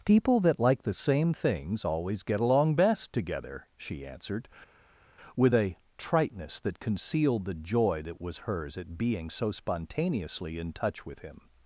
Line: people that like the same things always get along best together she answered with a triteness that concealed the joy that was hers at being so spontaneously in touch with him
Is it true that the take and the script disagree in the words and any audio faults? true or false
false